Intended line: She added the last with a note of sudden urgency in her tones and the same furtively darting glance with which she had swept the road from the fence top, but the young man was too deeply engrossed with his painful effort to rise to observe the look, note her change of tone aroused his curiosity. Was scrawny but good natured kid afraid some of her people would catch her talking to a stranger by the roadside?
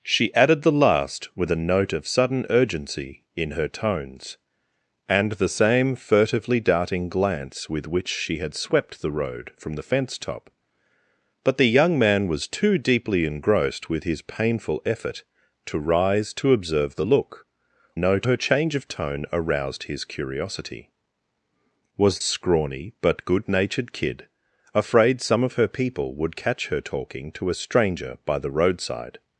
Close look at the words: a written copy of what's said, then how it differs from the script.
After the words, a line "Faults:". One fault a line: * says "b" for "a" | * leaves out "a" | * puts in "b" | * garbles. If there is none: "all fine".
She added the last with a note of sudden urgency in her tones and the same furtively darting glance with which she had swept the road from the fence top, but the young man was too deeply engrossed with his painful effort to rise to observe the look, note her change of tone aroused his curiosity. Was scrawny but good natured kid afraid some of her people would catch her talking to a stranger by the roadside?
Faults:
all fine